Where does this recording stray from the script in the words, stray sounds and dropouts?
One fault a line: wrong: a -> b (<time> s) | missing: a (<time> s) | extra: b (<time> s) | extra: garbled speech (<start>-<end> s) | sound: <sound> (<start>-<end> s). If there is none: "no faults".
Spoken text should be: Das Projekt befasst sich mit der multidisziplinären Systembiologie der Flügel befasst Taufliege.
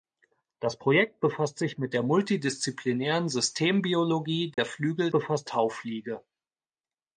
sound: dropout (4.5-4.6 s)